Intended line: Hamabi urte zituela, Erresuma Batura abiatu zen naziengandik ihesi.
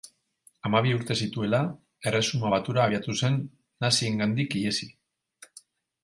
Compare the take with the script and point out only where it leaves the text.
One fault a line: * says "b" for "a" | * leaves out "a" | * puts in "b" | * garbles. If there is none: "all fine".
all fine